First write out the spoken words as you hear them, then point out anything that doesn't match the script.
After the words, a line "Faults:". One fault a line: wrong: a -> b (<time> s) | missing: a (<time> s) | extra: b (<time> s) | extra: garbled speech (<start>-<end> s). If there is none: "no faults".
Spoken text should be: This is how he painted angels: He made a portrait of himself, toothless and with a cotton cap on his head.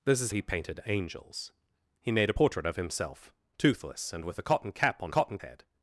This is he painted angels: He made a portrait of himself, toothless and with a cotton cap on cotton head.
Faults:
missing: how (0.3 s)
wrong: his -> cotton (5.1 s)